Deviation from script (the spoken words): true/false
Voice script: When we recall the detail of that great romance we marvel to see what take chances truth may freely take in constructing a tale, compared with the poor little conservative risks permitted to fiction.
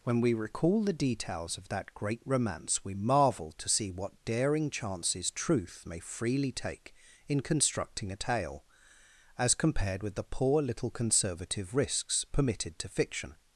true